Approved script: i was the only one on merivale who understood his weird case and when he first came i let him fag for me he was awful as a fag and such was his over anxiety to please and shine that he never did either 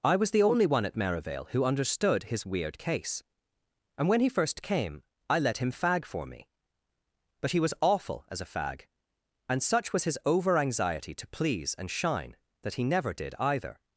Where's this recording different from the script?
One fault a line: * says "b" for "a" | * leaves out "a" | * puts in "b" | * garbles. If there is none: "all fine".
* says "at" for "on"
* puts in "but"